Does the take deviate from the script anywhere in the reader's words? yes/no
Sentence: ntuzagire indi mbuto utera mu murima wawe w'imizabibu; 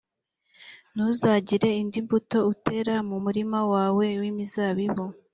no